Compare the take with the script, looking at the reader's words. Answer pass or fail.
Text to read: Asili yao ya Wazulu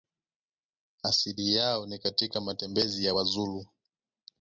fail